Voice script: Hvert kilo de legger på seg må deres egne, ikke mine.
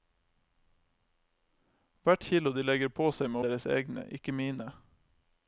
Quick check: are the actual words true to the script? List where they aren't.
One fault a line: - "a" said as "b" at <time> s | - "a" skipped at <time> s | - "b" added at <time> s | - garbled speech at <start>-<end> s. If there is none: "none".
none